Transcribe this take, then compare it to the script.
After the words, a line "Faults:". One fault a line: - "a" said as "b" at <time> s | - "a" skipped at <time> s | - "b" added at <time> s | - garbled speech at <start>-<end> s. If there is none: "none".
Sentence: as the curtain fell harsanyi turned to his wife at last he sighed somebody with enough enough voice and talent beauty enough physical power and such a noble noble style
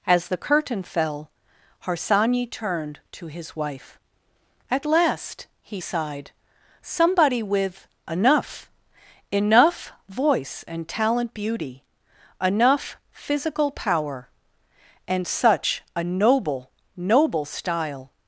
as the curtain fell harsanyi turned to his wife at last he sighed somebody with enough enough voice and talent beauty enough physical power and such a noble noble style
Faults:
none